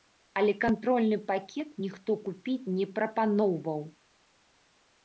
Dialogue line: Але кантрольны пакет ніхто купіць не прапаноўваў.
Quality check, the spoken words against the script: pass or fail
pass